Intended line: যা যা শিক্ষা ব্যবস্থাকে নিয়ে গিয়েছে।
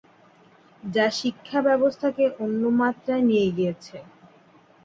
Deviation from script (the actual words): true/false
true